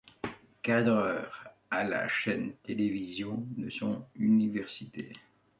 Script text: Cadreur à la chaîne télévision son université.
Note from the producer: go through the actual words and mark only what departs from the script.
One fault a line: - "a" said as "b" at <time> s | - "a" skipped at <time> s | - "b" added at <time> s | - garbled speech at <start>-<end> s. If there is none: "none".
- "de" added at 3.6 s